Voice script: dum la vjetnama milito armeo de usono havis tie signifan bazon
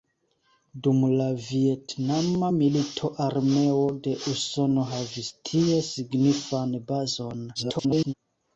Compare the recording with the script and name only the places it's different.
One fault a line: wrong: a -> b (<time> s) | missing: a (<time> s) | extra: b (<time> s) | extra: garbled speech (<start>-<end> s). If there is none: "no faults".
extra: garbled speech (7.5-8.1 s)